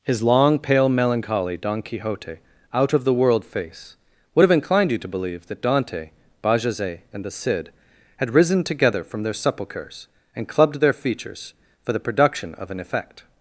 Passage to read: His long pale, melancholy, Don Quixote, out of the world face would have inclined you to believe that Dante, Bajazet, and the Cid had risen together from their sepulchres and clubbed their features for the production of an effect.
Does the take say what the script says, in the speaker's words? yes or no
yes